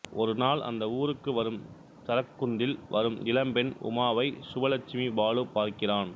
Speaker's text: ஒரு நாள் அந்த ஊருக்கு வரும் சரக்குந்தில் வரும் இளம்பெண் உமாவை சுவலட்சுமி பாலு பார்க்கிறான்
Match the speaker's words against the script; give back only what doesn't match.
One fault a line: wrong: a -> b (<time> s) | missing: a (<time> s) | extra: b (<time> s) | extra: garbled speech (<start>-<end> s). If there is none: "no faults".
no faults